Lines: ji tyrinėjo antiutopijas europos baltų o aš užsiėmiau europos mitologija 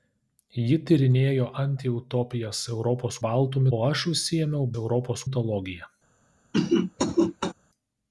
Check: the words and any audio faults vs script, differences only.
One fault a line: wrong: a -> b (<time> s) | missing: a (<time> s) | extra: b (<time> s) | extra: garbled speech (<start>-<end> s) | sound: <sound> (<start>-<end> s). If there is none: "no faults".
sound: cough (6.5-7.5 s)